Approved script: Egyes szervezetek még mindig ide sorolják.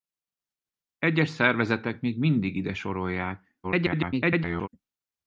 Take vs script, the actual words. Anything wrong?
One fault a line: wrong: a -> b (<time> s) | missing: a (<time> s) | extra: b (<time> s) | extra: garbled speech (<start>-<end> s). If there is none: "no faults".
extra: garbled speech (3.6-4.7 s)